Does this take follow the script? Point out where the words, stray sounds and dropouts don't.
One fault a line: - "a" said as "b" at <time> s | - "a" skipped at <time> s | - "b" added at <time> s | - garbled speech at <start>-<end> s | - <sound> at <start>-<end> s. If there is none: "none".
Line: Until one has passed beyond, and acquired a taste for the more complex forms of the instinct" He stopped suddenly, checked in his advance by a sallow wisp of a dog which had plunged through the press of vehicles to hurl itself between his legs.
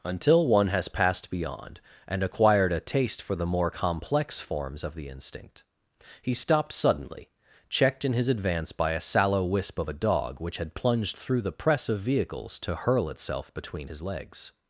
none